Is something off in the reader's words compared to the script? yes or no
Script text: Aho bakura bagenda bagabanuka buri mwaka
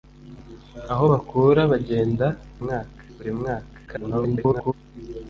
yes